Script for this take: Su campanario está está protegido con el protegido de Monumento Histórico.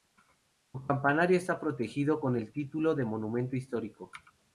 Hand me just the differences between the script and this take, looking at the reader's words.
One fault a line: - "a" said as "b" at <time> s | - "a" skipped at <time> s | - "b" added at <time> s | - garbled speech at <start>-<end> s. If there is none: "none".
- "está" skipped at 1.6 s
- "protegido" said as "título" at 2.5 s